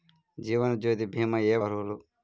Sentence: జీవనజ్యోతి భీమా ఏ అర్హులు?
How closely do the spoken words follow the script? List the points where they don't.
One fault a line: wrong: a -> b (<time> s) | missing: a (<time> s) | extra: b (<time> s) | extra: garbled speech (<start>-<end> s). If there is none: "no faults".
no faults